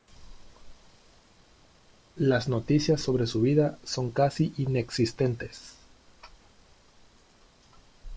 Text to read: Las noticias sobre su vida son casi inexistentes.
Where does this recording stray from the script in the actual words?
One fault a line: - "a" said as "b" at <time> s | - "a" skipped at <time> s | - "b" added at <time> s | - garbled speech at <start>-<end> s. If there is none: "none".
none